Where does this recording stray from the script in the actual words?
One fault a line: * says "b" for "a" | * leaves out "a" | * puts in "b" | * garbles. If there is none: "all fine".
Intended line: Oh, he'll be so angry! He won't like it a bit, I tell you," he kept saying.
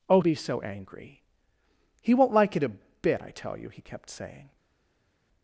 * leaves out "he'll"